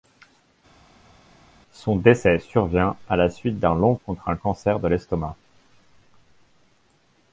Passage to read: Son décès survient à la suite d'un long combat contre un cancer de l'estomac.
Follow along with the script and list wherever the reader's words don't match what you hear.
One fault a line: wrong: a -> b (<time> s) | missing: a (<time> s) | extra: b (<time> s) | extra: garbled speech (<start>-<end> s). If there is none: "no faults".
missing: combat (4.0 s)